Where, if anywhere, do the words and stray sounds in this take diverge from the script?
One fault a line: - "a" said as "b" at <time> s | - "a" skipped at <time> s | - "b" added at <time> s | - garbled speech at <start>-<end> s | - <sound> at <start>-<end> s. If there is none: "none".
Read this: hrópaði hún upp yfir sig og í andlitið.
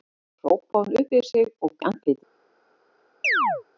- chirp at 3.2-3.6 s